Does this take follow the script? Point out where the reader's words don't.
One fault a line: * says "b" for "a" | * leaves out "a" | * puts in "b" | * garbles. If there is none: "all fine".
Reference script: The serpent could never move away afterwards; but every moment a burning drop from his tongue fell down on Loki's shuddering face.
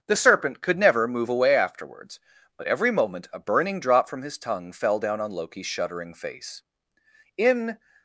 * puts in "In"